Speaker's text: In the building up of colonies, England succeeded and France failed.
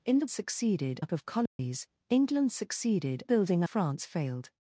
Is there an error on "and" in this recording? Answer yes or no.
yes